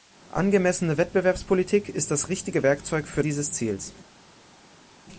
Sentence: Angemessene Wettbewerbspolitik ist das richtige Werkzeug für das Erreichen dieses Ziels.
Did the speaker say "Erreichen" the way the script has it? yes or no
no